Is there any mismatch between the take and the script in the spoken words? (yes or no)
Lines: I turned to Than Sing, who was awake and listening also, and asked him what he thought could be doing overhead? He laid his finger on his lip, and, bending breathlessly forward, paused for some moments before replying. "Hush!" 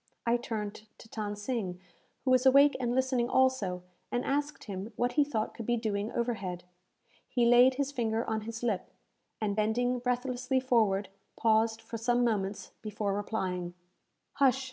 no